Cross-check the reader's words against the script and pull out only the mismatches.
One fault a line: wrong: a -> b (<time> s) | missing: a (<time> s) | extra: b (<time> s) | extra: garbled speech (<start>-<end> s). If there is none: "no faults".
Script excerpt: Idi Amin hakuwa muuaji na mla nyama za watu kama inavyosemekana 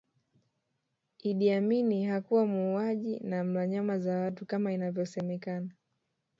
no faults